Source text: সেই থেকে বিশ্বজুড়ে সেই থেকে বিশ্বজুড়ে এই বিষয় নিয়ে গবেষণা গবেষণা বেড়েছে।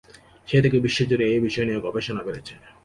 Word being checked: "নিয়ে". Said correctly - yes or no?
yes